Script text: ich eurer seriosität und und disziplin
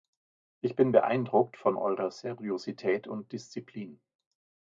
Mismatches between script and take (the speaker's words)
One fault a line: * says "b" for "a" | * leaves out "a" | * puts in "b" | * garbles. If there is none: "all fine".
* puts in "bin beeindruckt von"
* leaves out "und"